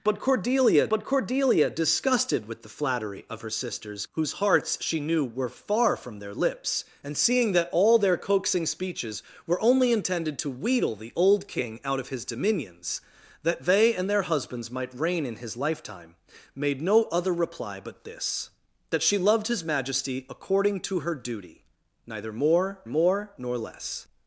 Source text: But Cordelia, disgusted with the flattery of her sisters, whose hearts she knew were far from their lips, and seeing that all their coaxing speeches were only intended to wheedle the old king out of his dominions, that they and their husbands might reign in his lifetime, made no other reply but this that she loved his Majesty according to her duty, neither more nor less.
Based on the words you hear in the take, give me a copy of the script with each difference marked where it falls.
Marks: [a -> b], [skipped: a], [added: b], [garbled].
But Cordelia, [added: but Cordelia] disgusted with the flattery of her sisters, whose hearts she knew were far from their lips, and seeing that all their coaxing speeches were only intended to wheedle the old king out of his dominions, that they and their husbands might reign in his lifetime, made no other reply but this that she loved his Majesty according to her duty, neither more [added: more] nor less.